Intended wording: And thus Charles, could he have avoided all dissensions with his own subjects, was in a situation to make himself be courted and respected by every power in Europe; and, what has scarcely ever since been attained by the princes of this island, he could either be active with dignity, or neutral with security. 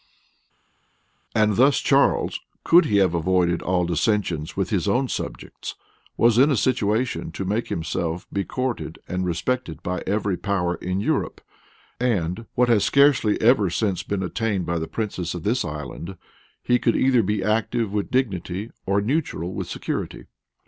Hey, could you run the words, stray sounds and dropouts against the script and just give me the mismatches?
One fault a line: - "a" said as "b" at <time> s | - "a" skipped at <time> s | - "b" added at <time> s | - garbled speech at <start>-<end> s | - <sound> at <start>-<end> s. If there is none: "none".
none